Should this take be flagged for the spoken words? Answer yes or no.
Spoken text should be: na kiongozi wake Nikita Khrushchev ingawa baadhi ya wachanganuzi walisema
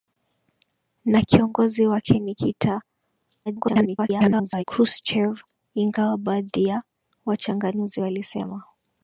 yes